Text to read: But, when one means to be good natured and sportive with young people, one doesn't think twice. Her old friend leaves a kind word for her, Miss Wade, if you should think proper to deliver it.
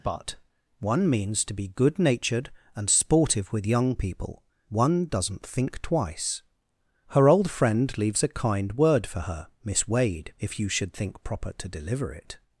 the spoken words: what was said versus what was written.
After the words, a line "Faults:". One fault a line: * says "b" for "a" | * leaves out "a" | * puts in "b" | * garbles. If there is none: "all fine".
But, one means to be good natured and sportive with young people, one doesn't think twice. Her old friend leaves a kind word for her, Miss Wade, if you should think proper to deliver it.
Faults:
* leaves out "when"